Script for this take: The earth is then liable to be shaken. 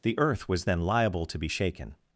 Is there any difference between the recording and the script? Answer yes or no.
yes